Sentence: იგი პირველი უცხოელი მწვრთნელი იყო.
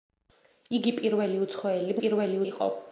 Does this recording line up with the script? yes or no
no